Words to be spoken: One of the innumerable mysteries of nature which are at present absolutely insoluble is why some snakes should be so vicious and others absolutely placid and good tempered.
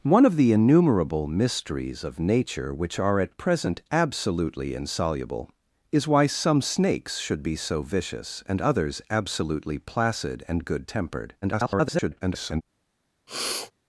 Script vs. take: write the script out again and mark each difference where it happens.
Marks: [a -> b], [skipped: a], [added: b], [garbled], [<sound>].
One of the innumerable mysteries of nature which are at present absolutely insoluble is why some snakes should be so vicious and others absolutely placid and good tempered. [garbled] [sniff]